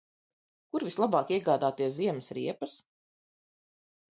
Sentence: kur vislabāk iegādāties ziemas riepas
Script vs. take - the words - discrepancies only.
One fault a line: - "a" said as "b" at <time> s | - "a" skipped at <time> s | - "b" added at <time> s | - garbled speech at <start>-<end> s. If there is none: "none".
none